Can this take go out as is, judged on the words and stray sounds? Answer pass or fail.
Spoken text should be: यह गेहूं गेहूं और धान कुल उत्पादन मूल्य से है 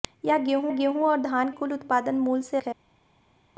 pass